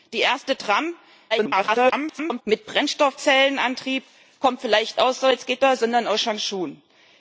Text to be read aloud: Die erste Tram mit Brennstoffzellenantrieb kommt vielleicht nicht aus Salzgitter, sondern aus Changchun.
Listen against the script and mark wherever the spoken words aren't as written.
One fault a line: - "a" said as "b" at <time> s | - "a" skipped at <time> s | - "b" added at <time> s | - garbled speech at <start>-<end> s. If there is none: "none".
- garbled speech at 1.3-2.4 s
- "nicht" skipped at 5.0 s